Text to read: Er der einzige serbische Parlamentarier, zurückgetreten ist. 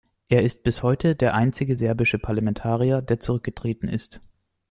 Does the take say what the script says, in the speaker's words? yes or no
no